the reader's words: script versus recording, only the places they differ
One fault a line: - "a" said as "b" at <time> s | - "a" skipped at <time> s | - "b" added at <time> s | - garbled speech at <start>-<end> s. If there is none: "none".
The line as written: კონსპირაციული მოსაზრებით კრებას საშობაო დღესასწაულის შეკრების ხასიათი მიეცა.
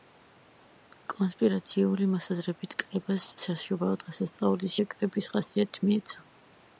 none